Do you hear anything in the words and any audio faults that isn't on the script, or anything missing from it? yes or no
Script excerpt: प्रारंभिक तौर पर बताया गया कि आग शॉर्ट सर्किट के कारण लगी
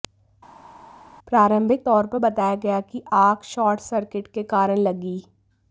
no